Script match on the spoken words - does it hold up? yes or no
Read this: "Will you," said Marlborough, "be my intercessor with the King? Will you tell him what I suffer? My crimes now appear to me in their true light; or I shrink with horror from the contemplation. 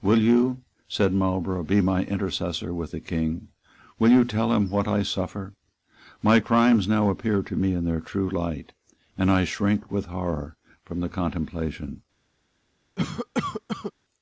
no